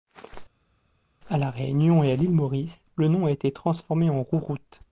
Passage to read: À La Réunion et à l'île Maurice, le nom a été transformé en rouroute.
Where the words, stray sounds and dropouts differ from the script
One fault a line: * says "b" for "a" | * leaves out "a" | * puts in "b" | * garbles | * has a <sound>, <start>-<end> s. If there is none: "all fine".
all fine